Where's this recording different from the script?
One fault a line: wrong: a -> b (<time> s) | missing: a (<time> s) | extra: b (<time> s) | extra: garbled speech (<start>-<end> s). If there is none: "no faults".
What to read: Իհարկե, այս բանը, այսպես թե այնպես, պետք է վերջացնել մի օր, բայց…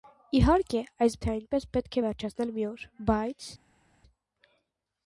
missing: բանը այսպես (1.2 s)